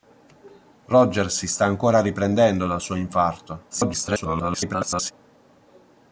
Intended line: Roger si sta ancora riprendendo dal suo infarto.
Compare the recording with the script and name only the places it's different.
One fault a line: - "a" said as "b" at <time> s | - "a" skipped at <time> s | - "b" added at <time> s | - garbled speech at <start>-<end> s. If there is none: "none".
- garbled speech at 3.7-5.1 s